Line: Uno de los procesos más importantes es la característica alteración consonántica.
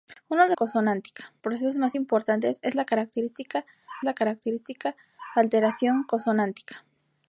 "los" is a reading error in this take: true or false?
true